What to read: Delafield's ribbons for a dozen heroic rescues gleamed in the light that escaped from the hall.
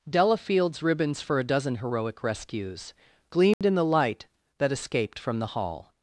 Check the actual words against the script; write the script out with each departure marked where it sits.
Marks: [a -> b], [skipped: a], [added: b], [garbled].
Delafield's ribbons for a dozen heroic rescues gleamed in the light that escaped from the hall.